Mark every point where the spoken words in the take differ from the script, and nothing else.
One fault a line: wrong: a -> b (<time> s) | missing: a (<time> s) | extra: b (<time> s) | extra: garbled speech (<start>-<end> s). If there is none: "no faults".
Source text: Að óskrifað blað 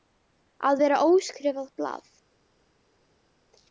extra: vera (0.8 s)